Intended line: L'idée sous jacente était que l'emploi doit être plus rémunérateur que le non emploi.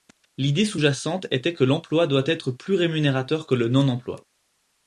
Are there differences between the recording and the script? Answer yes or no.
no